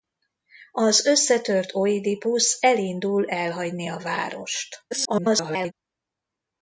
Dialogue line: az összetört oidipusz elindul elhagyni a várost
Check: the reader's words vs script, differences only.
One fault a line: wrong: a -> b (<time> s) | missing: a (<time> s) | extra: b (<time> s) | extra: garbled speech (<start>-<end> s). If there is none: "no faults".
extra: garbled speech (4.9-5.7 s)